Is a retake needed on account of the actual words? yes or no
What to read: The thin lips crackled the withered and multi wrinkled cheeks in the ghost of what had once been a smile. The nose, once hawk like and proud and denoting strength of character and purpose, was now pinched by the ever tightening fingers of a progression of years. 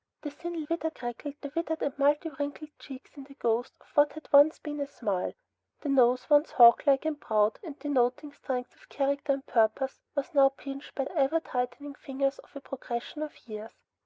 yes